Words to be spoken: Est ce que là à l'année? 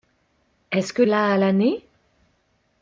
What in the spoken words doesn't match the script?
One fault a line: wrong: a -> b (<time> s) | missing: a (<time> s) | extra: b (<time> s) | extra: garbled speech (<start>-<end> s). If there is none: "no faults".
no faults